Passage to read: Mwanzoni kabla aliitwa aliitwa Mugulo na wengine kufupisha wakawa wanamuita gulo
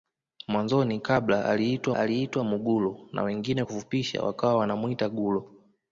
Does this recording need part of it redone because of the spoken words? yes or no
no